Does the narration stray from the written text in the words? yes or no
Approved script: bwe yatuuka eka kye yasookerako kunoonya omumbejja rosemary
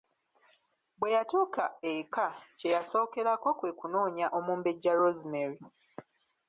yes